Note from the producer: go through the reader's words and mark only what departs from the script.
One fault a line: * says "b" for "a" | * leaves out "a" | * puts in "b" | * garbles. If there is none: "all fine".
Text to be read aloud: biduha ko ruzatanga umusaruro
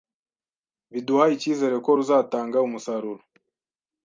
* puts in "icyizere"